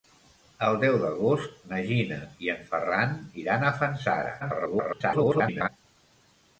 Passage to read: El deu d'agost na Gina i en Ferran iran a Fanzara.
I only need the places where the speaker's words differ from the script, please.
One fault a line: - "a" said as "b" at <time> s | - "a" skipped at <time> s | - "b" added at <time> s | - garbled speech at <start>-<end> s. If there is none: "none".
- garbled speech at 4.4-5.7 s